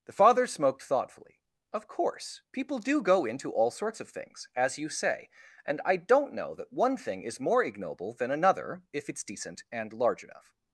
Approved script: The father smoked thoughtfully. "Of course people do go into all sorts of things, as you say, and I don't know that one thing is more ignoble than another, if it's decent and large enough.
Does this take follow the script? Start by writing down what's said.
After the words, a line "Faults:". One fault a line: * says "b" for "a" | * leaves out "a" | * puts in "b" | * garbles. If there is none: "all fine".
The father smoked thoughtfully. "Of course people do go into all sorts of things, as you say, and I don't know that one thing is more ignoble than another, if it's decent and large enough.
Faults:
all fine